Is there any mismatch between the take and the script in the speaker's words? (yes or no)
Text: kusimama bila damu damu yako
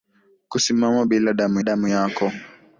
no